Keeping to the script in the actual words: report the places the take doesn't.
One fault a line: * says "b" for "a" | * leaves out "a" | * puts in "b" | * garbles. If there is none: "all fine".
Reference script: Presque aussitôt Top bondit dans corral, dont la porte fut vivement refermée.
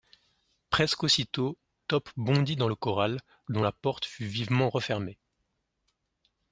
* puts in "le"